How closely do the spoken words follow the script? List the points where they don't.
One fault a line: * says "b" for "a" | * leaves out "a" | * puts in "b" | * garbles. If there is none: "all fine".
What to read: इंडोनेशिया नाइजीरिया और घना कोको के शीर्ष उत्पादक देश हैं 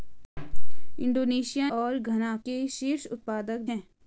* leaves out "नाइजीरिया"
* leaves out "कोको"
* leaves out "देश"